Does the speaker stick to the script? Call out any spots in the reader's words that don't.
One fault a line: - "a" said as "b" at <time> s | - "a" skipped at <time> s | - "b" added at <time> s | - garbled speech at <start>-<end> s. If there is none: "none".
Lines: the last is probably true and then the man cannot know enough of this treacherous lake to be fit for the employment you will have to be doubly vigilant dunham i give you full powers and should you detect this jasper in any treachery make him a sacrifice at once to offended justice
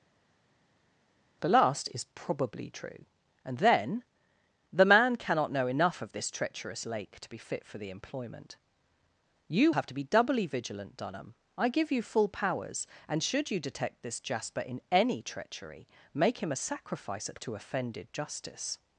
- "will" skipped at 9.7 s
- "once" skipped at 17.4 s